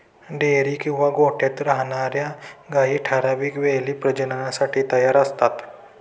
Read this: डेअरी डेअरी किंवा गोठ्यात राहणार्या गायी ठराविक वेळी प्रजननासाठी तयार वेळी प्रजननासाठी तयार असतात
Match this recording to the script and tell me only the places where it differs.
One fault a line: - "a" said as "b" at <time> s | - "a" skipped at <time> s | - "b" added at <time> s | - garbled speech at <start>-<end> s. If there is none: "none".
- "डेअरी" skipped at 0.7 s
- "वेळी प्रजननासाठी तयार" skipped at 5.2 s